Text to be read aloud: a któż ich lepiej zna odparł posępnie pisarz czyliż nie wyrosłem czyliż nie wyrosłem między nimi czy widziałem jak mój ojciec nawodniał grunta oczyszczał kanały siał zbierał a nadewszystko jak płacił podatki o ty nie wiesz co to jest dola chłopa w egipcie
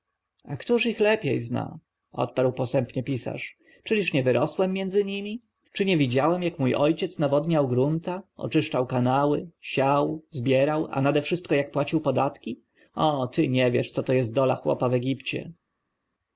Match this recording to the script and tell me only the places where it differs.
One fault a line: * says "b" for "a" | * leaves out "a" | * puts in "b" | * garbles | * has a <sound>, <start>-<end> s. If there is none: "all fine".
* leaves out "czyliż nie wyrosłem"
* puts in "nie"